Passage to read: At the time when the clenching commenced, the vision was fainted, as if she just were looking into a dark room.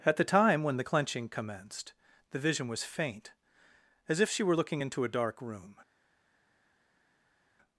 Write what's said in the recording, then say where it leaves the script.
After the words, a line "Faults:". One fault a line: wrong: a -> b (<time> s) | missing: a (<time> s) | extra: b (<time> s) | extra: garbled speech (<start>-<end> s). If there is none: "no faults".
At the time when the clenching commenced, the vision was faint, as if she were looking into a dark room.
Faults:
wrong: fainted -> faint (2.8 s)
missing: just (4.4 s)